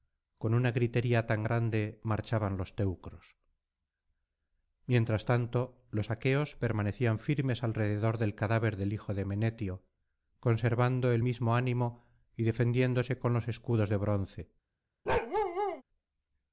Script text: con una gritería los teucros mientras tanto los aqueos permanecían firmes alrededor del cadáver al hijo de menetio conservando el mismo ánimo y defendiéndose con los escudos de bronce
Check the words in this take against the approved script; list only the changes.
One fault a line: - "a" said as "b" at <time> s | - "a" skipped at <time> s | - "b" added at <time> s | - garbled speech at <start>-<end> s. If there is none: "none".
- "tan grande marchaban" added at 1.3 s
- "al" said as "del" at 8.8 s